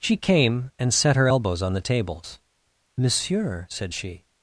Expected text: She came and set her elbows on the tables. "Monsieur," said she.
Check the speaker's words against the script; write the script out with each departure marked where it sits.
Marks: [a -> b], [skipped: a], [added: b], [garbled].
She came and set her elbows on the tables. "Monsieur," said she.